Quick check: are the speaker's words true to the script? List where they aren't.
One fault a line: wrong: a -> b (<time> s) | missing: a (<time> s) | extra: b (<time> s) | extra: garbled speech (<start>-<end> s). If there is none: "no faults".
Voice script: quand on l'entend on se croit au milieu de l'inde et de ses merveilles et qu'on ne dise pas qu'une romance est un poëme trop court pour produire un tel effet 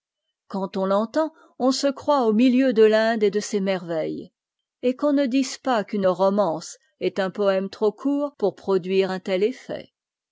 no faults